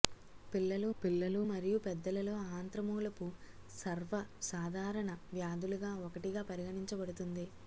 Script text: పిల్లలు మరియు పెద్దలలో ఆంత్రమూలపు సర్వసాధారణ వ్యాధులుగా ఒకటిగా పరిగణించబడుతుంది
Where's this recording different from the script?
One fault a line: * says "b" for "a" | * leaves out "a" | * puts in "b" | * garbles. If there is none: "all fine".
* puts in "పిల్లలు"